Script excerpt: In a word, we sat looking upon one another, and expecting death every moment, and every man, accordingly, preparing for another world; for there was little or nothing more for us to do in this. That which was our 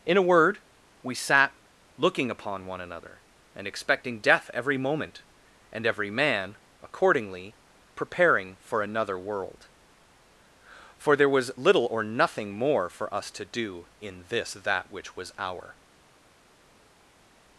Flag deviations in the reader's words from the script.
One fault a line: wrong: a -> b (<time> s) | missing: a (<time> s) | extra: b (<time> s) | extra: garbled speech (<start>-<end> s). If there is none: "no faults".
no faults